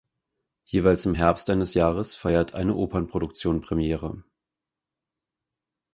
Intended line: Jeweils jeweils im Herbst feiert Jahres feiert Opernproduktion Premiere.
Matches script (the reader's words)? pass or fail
fail